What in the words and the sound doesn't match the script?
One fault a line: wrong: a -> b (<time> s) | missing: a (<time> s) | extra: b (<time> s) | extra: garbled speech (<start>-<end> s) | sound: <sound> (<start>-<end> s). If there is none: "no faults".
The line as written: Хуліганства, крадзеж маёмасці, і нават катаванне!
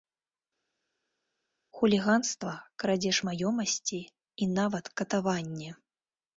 no faults